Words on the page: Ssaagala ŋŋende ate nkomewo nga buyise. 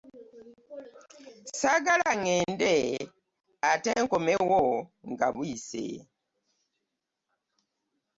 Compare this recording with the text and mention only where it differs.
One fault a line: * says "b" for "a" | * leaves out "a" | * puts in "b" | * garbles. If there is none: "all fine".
all fine